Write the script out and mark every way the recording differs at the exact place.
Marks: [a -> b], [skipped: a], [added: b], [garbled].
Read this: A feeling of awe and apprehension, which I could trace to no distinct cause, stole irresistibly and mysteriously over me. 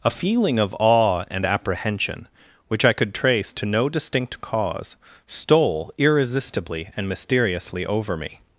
A feeling of awe and apprehension, which I could trace to no distinct cause, stole irresistibly and mysteriously over me.